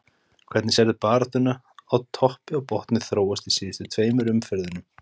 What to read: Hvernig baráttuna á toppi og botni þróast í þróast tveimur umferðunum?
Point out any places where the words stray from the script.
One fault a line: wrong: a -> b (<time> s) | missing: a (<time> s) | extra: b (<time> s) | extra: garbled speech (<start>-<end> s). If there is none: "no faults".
extra: sérðu (0.8 s)
wrong: þróast -> síðustu (3.6 s)